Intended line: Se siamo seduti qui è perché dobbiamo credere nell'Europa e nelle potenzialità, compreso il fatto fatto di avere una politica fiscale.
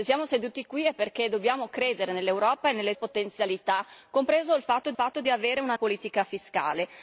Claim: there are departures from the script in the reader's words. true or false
false